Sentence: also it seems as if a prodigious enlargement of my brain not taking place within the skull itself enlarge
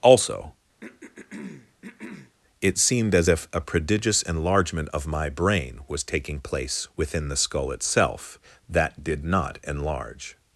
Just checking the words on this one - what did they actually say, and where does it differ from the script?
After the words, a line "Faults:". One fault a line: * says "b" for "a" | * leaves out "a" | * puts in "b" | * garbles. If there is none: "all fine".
also it seemed as if a prodigious enlargement of my brain was taking place within the skull itself that did not enlarge
Faults:
* says "seemed" for "seems"
* says "was" for "not"
* puts in "that did not"